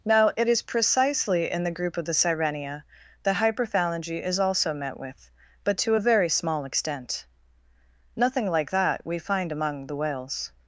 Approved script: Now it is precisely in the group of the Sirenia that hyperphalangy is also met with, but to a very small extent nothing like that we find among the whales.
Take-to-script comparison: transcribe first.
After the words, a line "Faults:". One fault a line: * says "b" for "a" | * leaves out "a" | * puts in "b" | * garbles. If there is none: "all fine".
Now it is precisely in the group of the Sirenia that hyperphalangy is also met with, but to a very small extent nothing like that we find among the whales.
Faults:
all fine